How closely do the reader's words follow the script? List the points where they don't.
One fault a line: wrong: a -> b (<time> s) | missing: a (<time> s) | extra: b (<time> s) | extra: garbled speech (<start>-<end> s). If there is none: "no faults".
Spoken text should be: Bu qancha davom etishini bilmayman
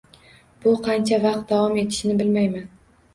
extra: vaqt (1.2 s)